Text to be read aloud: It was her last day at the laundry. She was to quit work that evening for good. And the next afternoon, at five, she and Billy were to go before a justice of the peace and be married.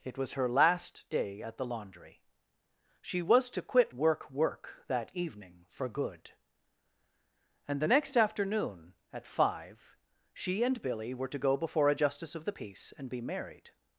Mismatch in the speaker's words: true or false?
true